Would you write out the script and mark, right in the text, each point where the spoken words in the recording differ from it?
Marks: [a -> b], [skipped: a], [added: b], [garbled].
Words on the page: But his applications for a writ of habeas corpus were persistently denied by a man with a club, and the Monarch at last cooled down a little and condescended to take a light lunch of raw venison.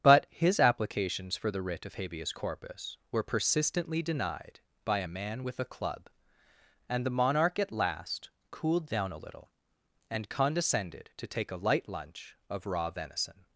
But his applications for [a -> the] writ of habeas corpus were persistently denied by a man with a club, and the Monarch at last cooled down a little and condescended to take a light lunch of raw venison.